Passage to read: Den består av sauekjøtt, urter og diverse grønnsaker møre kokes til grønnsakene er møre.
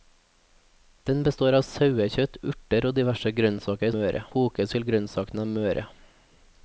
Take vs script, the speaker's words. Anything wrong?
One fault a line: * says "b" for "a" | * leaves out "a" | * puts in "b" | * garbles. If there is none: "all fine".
all fine